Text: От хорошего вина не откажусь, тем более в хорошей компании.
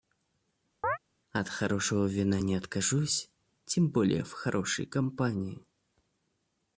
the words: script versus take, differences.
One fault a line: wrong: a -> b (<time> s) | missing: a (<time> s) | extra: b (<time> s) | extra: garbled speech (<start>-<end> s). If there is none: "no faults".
no faults